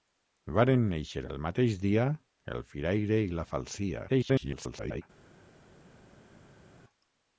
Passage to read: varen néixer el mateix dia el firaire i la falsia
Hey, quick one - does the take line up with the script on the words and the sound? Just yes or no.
no